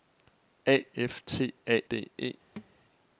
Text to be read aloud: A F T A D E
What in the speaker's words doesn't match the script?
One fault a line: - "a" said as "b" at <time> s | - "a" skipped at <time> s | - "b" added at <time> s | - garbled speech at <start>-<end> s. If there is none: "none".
none